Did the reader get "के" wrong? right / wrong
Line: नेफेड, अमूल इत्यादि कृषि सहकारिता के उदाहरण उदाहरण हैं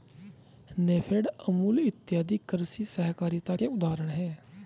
right